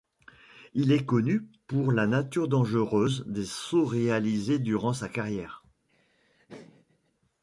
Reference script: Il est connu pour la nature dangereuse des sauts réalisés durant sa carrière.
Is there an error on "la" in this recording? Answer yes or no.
no